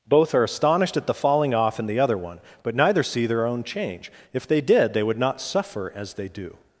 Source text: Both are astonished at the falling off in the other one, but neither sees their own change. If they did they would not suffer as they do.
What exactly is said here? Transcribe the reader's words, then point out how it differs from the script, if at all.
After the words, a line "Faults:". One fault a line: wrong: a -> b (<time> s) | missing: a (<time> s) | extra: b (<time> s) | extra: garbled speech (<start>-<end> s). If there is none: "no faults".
Both are astonished at the falling off in the other one, but neither see their own change. If they did they would not suffer as they do.
Faults:
wrong: sees -> see (3.0 s)